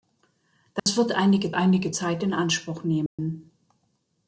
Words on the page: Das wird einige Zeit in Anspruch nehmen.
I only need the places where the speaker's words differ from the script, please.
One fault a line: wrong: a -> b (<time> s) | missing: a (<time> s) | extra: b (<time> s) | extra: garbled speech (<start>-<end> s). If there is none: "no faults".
extra: einige (1.5 s)